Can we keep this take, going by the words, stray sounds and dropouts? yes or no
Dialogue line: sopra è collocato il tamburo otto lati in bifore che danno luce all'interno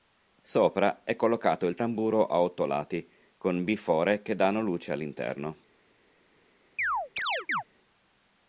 no